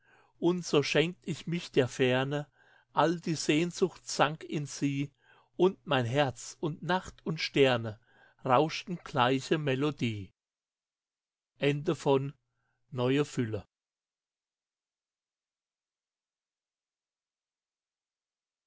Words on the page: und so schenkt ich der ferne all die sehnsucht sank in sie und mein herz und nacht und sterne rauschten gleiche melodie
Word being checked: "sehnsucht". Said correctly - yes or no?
yes